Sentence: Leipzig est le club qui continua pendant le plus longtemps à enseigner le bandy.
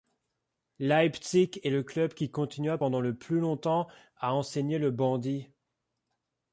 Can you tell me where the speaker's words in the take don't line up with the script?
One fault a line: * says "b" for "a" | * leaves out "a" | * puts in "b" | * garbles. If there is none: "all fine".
all fine